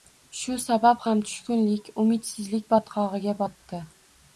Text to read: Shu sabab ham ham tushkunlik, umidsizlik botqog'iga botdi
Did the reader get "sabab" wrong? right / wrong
right